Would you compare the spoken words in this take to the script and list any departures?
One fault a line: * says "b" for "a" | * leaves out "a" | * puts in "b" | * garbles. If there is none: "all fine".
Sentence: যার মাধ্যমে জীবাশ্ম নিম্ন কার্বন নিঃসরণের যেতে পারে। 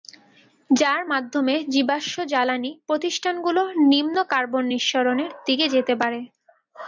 * puts in "জ্বালানি প্রতিষ্ঠানগুলো"
* puts in "দিকে"